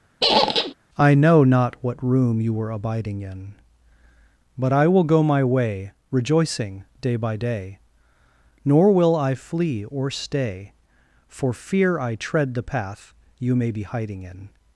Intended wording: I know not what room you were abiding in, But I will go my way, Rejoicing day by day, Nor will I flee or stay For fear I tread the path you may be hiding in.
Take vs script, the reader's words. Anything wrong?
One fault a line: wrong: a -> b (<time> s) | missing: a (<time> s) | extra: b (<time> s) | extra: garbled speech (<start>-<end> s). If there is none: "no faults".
no faults